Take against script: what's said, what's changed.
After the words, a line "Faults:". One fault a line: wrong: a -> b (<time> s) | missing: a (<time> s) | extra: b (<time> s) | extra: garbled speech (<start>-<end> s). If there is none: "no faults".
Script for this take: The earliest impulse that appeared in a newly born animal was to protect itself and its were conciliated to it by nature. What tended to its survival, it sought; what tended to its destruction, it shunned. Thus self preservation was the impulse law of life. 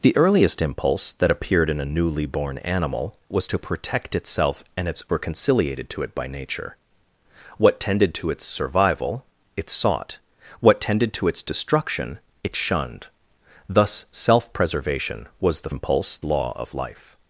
The earliest impulse that appeared in a newly born animal was to protect itself and its were conciliated to it by nature. What tended to its survival, it sought; what tended to its destruction, it shunned. Thus self preservation was the impulse law of life.
Faults:
no faults